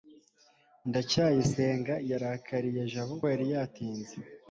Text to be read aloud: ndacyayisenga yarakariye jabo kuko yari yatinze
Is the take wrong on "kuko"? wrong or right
wrong